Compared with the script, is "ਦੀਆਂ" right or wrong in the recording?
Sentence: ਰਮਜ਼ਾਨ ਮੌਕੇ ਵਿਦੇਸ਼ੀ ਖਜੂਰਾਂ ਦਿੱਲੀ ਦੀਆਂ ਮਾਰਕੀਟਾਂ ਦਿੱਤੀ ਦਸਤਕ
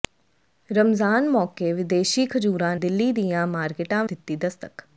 right